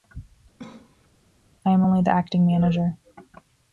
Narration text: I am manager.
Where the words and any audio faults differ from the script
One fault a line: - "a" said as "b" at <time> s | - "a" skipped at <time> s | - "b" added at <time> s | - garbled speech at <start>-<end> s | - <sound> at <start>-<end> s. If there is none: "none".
- cough at 0.6-1.1 s
- "only the acting" added at 1.8 s